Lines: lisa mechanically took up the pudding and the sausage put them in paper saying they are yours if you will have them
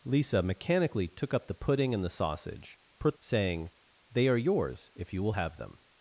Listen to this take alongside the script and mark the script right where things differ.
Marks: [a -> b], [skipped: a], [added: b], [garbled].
lisa mechanically took up the pudding and the sausage put [skipped: them in paper] saying they are yours if you will have them